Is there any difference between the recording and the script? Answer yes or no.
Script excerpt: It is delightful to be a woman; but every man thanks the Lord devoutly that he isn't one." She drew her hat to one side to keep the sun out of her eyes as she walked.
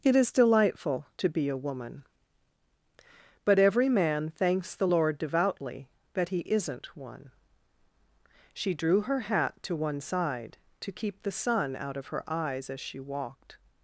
no